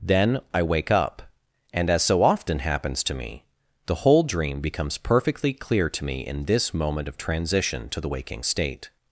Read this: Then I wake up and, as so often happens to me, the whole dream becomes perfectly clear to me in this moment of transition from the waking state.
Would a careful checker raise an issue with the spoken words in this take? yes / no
yes